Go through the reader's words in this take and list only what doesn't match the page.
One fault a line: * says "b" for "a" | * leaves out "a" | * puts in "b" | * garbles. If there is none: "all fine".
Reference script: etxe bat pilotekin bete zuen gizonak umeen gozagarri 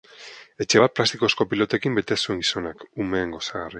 * puts in "plastikozko"